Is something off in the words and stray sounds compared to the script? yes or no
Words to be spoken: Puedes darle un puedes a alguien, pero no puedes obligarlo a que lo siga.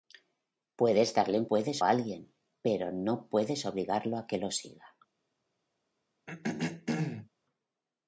yes